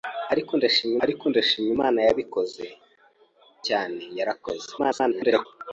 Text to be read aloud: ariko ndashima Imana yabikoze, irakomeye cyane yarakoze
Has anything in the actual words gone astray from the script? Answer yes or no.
yes